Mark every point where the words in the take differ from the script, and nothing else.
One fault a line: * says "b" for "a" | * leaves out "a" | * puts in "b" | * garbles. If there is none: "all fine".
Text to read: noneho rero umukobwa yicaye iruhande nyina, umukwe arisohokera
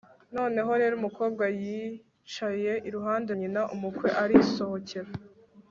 all fine